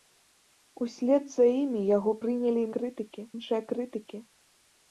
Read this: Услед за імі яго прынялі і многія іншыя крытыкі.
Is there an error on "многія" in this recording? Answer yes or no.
yes